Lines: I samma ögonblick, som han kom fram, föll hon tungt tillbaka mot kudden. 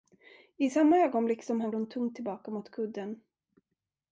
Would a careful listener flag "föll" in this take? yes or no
yes